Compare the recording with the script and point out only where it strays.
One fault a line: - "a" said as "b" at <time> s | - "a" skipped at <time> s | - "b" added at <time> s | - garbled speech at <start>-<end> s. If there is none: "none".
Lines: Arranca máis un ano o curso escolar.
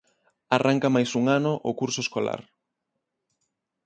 none